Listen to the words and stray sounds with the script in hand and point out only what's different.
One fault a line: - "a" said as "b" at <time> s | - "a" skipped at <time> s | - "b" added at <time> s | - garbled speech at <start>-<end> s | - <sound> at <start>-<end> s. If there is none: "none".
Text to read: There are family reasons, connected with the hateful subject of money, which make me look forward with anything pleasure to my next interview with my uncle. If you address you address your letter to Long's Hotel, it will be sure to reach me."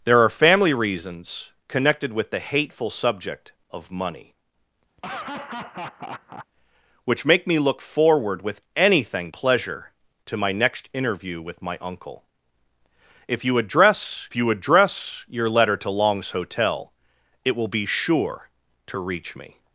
- laugh at 5.0-6.5 s